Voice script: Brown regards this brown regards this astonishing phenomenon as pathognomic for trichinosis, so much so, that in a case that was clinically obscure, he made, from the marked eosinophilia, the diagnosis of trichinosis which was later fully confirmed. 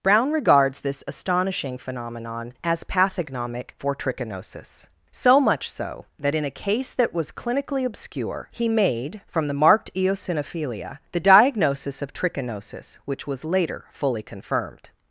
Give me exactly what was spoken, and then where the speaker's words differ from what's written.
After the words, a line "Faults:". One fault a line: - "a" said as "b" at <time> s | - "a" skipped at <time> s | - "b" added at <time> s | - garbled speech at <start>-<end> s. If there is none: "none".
Brown regards this astonishing phenomenon as pathognomic for trichinosis, so much so, that in a case that was clinically obscure, he made, from the marked eosinophilia, the diagnosis of trichinosis which was later fully confirmed.
Faults:
- "brown regards this" skipped at 1.0 s